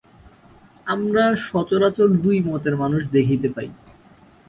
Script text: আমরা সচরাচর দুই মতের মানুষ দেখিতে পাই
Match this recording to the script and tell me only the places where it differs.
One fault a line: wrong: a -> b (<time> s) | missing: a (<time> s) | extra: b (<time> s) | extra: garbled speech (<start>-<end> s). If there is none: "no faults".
no faults